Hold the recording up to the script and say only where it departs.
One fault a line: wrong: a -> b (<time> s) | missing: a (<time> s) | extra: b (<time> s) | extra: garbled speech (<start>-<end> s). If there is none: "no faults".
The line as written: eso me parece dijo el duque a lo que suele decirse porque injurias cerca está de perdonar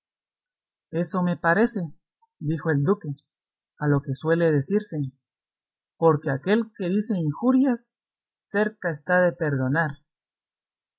extra: aquel que dice (6.3 s)